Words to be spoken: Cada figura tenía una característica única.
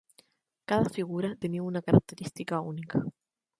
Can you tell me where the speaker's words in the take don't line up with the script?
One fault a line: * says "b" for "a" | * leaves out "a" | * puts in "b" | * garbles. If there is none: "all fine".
all fine